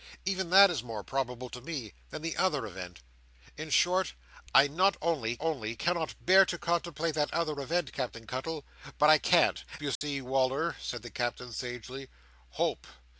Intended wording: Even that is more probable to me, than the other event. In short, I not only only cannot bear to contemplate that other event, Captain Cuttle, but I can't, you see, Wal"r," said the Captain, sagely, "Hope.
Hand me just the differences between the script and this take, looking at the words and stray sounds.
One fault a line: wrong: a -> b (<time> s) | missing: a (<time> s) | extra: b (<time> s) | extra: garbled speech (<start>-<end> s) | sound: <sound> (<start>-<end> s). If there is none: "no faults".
sound: dropout (10.0-10.0 s)